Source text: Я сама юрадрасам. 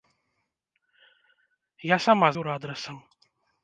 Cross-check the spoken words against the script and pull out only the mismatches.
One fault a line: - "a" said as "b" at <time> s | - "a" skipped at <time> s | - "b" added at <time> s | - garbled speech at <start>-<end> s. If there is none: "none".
none